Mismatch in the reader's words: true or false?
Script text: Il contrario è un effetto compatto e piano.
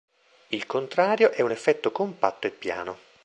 false